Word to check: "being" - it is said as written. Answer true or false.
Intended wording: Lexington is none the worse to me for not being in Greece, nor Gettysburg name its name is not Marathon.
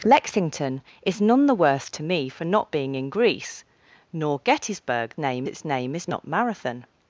true